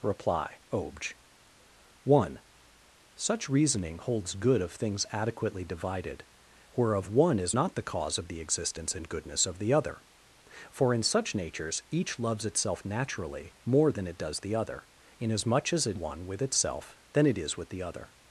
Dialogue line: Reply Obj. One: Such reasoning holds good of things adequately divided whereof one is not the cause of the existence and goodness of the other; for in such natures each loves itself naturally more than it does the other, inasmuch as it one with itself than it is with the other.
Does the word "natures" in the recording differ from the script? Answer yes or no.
no